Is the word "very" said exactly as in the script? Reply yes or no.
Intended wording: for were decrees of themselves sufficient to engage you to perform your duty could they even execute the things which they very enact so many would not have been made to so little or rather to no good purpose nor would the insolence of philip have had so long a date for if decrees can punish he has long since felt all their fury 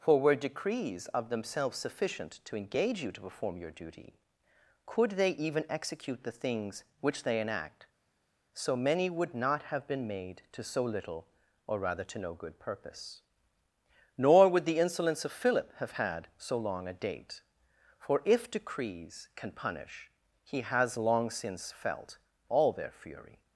no